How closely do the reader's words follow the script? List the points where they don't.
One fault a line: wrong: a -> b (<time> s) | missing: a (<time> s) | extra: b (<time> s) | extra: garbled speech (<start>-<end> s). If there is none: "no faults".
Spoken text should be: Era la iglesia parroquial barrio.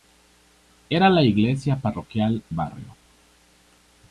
no faults